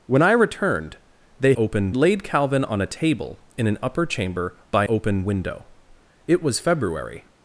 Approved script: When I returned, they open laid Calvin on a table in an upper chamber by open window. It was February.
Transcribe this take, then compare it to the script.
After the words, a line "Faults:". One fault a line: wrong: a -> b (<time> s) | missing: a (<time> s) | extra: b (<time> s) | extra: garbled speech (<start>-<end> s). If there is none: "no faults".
When I returned, they open laid Calvin on a table in an upper chamber by open window. It was February.
Faults:
no faults